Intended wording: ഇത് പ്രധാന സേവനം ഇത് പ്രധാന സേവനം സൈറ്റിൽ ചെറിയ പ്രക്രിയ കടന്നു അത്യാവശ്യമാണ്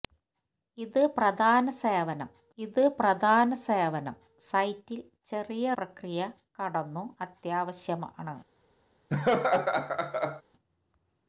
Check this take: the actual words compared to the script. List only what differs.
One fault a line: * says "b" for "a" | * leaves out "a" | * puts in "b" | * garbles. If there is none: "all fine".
all fine